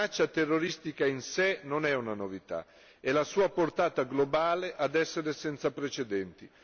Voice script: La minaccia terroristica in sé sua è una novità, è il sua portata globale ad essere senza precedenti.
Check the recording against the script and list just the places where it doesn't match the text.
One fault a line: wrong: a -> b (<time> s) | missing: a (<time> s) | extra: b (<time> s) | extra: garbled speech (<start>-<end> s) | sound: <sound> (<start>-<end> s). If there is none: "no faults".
wrong: sua -> non (1.6 s)
wrong: il -> la (3.1 s)